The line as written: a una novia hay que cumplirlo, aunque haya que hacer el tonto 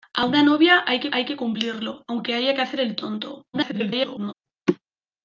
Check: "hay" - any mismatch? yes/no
no